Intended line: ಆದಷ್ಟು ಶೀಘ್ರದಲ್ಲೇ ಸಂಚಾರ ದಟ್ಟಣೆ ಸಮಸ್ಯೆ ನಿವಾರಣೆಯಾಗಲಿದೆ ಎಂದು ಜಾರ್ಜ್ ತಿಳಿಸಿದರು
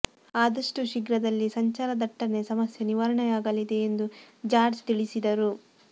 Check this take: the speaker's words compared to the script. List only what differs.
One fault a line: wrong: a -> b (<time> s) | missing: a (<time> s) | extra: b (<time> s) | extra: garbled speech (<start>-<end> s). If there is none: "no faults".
no faults